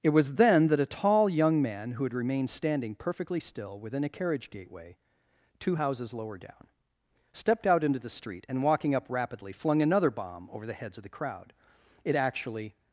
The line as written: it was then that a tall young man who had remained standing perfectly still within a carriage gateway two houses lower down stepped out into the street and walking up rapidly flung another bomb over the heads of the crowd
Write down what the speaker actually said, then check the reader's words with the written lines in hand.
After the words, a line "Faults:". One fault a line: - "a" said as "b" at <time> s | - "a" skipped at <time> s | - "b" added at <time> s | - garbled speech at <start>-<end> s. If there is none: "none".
it was then that a tall young man who had remained standing perfectly still within a carriage gateway two houses lower down stepped out into the street and walking up rapidly flung another bomb over the heads of the crowd it actually
Faults:
- "it actually" added at 12.0 s